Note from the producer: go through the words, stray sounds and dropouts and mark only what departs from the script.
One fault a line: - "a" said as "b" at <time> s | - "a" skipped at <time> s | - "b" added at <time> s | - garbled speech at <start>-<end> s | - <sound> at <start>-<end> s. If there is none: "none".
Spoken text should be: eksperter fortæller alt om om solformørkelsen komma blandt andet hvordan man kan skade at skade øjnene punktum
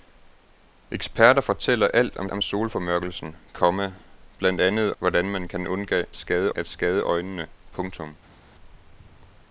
none